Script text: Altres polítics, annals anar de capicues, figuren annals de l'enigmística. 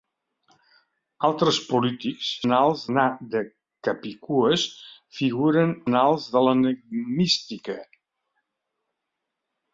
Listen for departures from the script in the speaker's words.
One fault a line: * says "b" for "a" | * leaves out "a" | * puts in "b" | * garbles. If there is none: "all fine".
all fine